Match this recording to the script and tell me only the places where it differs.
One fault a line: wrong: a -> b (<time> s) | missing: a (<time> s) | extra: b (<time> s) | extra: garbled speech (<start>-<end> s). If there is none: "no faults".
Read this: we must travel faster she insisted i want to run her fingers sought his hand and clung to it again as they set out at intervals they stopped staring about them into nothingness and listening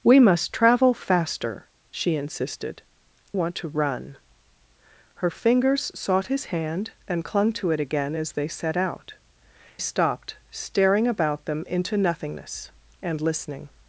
missing: i (2.8 s)
missing: at intervals they (9.1 s)